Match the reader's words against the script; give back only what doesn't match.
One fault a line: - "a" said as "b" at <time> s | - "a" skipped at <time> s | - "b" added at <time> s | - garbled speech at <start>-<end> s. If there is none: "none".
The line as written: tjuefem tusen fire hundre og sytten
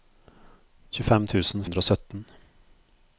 - "fire" skipped at 1.7 s